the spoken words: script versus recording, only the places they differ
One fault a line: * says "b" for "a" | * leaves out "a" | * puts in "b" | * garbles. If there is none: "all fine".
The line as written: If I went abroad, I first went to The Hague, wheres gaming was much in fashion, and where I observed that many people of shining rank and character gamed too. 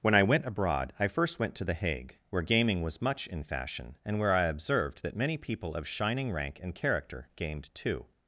* says "When" for "If"
* says "where" for "wheres"